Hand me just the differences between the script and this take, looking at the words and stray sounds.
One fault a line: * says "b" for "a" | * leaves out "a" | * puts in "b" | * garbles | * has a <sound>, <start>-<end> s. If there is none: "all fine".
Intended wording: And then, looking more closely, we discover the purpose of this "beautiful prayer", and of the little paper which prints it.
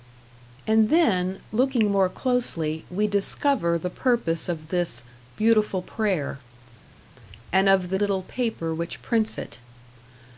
all fine